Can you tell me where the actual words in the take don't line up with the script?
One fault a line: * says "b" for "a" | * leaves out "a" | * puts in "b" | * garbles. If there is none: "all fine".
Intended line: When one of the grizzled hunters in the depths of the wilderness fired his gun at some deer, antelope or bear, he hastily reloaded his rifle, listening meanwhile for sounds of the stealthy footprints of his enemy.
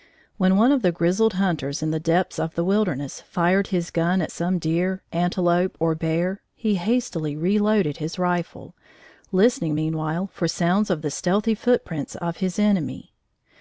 all fine